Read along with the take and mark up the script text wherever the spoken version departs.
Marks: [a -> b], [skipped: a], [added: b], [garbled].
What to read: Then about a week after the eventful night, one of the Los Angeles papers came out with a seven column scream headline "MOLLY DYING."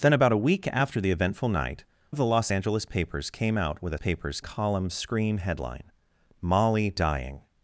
Then about a week after the eventful night, [skipped: one] of the Los Angeles papers came out with a [seven -> papers] column scream headline "MOLLY DYING."